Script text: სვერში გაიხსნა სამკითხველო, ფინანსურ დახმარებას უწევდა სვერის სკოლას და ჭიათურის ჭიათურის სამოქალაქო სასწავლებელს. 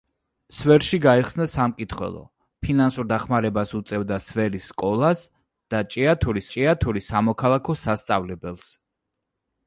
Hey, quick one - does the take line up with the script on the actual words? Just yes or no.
yes